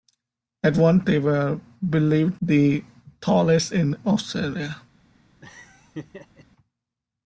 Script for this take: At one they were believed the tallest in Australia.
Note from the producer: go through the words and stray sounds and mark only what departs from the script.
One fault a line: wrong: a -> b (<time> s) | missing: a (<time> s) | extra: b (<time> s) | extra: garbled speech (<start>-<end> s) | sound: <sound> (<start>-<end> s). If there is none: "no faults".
sound: laugh (5.4-6.5 s)